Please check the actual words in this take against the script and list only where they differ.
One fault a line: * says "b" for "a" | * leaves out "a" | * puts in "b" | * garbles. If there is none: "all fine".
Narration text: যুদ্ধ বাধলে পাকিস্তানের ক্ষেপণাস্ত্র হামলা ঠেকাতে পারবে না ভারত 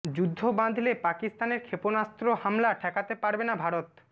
all fine